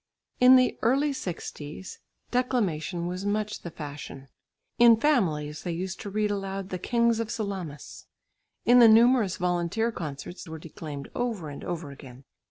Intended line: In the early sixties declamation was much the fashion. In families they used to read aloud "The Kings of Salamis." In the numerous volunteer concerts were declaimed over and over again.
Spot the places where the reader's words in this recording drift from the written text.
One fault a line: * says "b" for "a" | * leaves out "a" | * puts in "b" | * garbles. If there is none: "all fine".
all fine